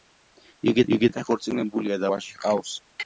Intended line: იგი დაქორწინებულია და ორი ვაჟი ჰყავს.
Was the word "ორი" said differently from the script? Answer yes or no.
yes